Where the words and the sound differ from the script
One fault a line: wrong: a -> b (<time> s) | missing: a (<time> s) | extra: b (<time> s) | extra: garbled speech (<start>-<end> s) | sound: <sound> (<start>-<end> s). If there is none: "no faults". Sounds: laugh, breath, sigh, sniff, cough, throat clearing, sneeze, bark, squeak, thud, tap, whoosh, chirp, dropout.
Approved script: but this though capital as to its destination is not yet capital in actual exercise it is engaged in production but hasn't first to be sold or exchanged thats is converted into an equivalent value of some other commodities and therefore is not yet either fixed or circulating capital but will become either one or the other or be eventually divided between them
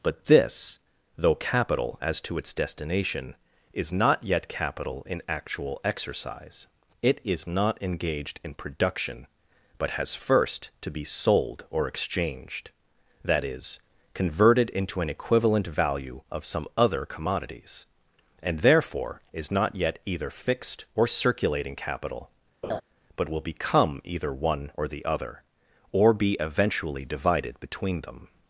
extra: not (7.4 s)
wrong: hasn't -> has (9.9 s)
wrong: thats -> that (13.2 s)
sound: laugh (22.6-22.8 s)